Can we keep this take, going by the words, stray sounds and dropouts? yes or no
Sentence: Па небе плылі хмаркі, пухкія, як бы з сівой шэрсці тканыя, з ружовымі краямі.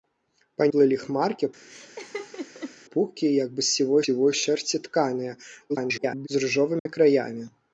no